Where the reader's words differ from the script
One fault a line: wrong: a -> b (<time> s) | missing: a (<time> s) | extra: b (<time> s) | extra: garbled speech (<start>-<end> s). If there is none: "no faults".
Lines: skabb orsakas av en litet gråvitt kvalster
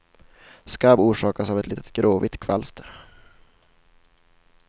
wrong: en -> ett (1.6 s)